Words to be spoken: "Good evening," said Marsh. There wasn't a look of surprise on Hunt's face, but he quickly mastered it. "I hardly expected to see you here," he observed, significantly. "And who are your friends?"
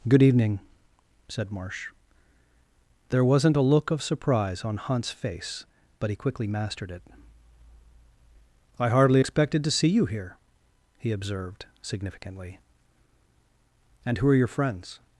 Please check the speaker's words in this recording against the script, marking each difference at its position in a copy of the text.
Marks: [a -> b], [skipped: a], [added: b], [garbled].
"Good evening," said Marsh. There wasn't a look of surprise on Hunt's face, but he quickly mastered it. "I hardly expected to see you here," he observed, significantly. "And who are your friends?"